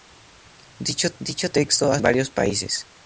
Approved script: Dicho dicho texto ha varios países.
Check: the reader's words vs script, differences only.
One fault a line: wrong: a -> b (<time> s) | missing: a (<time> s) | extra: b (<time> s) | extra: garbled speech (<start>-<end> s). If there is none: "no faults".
no faults